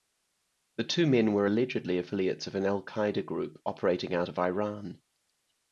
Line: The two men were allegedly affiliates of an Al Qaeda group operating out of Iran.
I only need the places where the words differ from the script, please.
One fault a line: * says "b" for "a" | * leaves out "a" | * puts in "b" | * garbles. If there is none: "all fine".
all fine